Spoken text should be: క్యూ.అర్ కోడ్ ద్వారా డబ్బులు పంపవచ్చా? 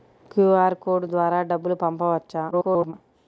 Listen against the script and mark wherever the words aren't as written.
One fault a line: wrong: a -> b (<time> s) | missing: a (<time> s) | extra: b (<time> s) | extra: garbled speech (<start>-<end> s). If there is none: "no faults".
extra: garbled speech (2.5-2.9 s)